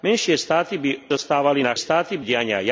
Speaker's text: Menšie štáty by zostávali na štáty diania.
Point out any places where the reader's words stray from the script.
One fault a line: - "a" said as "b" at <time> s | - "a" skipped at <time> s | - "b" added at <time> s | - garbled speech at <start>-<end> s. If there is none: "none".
none